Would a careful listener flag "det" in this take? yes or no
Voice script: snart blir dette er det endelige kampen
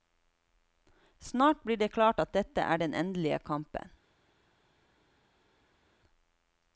yes